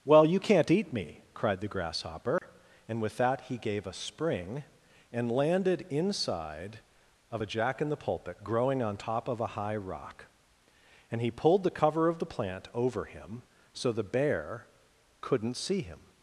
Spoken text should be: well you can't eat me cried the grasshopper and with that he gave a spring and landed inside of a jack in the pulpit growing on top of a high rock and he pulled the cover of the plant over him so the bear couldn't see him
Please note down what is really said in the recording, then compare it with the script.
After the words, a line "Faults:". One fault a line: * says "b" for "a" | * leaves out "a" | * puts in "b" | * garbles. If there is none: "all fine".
well you can't eat me cried the grasshopper and with that he gave a spring and landed inside of a jack in the pulpit growing on top of a high rock and he pulled the cover of the plant over him so the bear couldn't see him
Faults:
all fine